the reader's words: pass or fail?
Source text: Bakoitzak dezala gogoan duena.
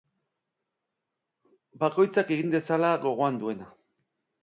fail